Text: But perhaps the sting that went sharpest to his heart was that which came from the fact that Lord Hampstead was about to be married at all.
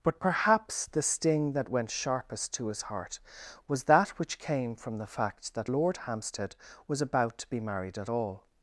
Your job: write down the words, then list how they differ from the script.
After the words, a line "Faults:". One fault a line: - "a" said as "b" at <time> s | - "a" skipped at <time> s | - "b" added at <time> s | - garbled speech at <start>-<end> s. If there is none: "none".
But perhaps the sting that went sharpest to his heart was that which came from the fact that Lord Hampstead was about to be married at all.
Faults:
none